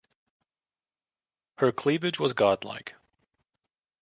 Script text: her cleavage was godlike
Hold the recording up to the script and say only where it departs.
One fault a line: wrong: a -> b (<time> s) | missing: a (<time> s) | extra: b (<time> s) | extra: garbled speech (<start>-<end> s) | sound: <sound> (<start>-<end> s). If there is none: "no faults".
no faults